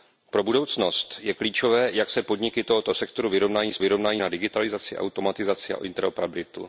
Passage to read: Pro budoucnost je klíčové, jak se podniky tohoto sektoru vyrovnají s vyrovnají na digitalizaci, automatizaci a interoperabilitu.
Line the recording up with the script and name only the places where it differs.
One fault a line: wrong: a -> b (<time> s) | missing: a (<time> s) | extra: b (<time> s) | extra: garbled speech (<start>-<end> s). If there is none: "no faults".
no faults